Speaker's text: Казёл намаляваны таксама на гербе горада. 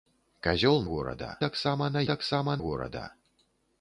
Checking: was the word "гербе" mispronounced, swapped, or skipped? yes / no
yes